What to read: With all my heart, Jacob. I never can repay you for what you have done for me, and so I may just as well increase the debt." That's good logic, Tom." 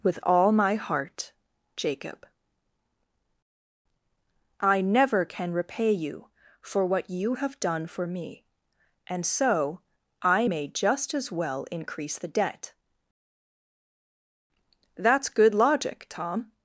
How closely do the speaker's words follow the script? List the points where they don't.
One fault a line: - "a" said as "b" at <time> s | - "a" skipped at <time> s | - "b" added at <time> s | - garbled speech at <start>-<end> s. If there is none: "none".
none